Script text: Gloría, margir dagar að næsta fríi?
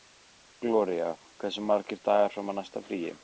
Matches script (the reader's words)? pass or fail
fail